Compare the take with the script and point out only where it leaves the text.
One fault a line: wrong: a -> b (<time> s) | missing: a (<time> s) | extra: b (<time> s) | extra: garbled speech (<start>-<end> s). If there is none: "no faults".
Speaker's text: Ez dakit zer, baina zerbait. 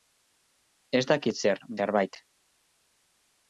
missing: baina (1.6 s)